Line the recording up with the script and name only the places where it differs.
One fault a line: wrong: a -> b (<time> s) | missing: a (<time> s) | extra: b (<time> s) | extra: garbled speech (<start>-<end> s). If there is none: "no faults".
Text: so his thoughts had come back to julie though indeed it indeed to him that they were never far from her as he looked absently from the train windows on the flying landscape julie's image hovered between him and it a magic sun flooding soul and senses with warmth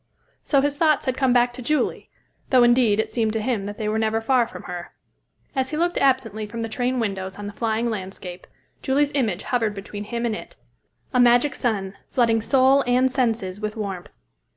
wrong: indeed -> seemed (3.1 s)